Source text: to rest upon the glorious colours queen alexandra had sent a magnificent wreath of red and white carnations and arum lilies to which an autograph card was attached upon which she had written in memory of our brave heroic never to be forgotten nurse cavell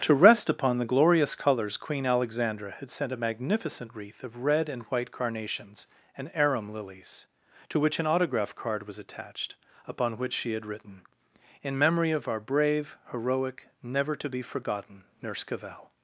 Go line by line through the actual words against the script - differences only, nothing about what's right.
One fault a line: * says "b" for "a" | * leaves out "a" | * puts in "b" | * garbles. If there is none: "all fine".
all fine